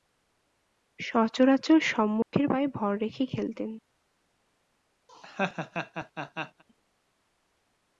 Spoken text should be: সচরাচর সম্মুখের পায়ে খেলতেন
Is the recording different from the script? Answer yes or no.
yes